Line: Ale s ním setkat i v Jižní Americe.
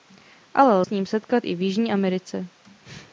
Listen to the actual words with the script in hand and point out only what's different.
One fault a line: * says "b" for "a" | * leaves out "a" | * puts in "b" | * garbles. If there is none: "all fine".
all fine